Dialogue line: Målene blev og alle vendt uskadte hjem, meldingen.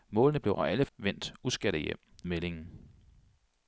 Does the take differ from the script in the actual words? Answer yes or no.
no